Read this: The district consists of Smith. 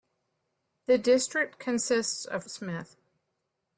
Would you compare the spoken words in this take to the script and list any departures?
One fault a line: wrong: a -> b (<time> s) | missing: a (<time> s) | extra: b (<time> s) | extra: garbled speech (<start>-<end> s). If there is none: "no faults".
no faults